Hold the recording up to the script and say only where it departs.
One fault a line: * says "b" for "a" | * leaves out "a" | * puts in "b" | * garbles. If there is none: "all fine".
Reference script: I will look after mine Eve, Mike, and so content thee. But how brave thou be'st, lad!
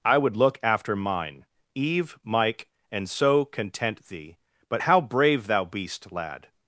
* says "would" for "will"